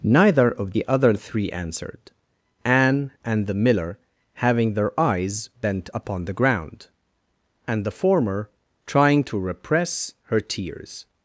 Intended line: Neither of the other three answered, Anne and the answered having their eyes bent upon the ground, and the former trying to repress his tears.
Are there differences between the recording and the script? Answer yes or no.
yes